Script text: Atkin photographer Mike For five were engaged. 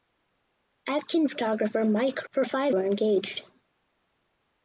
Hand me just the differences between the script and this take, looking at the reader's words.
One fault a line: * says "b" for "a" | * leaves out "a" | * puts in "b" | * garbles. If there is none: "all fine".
all fine